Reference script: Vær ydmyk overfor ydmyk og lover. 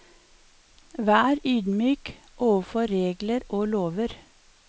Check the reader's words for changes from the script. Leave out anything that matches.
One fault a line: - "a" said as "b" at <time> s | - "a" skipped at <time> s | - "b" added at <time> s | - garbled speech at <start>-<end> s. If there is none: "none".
- "ydmyk" said as "regler" at 2.9 s